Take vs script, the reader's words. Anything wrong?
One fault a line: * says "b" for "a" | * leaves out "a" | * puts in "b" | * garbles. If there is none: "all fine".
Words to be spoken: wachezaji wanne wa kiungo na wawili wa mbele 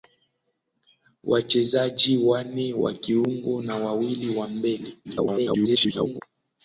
* garbles